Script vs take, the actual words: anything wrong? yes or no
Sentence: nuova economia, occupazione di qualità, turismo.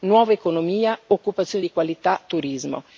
no